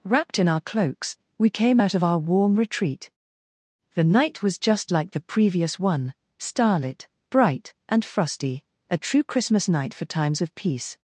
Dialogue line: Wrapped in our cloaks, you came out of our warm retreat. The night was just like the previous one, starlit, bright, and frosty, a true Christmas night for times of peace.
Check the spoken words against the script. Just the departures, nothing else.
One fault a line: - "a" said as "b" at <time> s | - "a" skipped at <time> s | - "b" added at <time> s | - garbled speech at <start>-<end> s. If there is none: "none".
- "you" said as "we" at 1.4 s